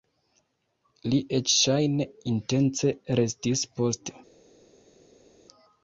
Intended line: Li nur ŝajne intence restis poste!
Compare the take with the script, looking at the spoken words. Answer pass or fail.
fail